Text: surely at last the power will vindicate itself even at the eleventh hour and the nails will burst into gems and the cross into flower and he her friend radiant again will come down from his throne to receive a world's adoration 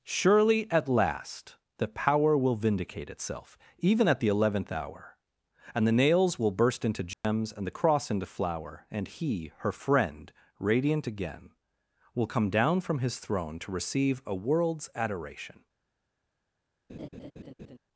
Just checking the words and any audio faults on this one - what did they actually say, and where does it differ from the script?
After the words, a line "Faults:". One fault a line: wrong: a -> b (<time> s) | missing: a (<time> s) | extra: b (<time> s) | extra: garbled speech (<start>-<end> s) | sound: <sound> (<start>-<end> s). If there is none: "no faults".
surely at last the power will vindicate itself even at the eleventh hour and the nails will burst into gems and the cross into flower and he her friend radiant again will come down from his throne to receive a world's adoration
Faults:
sound: dropout (7.1-7.2 s)
sound: laugh (16.9-17.8 s)